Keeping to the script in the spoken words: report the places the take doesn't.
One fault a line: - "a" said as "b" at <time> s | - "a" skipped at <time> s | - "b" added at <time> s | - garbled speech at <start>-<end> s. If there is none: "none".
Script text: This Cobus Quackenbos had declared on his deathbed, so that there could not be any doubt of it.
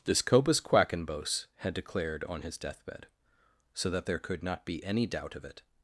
none